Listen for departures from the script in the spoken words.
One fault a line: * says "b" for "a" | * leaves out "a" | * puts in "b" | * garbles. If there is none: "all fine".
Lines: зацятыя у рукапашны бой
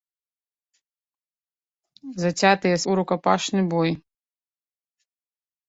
all fine